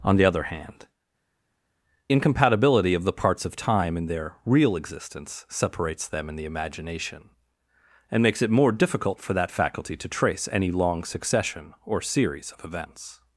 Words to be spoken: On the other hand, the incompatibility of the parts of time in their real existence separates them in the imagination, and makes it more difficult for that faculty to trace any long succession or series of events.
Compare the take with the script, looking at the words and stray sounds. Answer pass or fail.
fail